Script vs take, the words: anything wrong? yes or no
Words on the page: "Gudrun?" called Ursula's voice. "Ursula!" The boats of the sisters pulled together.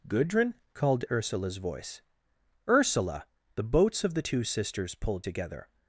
yes